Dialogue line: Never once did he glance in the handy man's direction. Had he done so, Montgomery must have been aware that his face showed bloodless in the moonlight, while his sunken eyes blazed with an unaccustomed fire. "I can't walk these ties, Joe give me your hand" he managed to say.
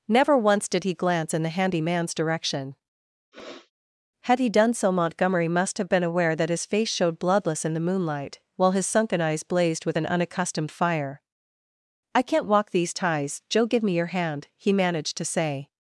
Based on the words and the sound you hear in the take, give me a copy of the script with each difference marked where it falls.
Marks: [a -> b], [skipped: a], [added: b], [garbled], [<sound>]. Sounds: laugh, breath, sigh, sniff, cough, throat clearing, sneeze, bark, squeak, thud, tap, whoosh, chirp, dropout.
Never once did he glance in the handy man's direction. [sniff] Had he done so, Montgomery must have been aware that his face showed bloodless in the moonlight, while his sunken eyes blazed with an unaccustomed fire. "I can't walk these ties, Joe give me your hand" he managed to say.